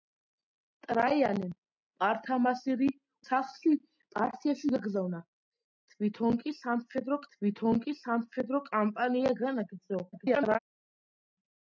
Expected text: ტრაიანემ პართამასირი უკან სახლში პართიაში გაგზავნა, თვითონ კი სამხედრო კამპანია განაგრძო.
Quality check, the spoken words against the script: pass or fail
fail